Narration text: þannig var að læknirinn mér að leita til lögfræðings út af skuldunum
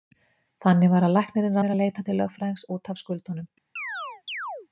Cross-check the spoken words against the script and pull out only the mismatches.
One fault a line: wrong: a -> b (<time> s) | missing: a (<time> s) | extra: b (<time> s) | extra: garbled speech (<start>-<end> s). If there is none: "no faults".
no faults